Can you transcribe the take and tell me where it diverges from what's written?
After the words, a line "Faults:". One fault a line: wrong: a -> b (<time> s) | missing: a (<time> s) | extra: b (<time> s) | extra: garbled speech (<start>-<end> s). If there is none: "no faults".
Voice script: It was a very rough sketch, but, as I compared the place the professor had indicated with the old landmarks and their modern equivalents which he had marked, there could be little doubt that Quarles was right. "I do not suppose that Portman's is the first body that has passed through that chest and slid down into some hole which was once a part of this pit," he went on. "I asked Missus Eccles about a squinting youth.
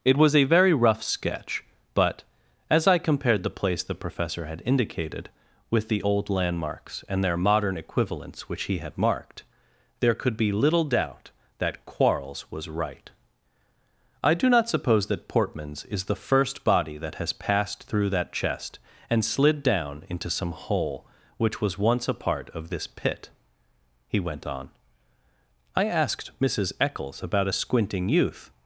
It was a very rough sketch, but, as I compared the place the professor had indicated with the old landmarks and their modern equivalents which he had marked, there could be little doubt that Quarles was right. "I do not suppose that Portman's is the first body that has passed through that chest and slid down into some hole which was once a part of this pit," he went on. "I asked Missus Eccles about a squinting youth.
Faults:
no faults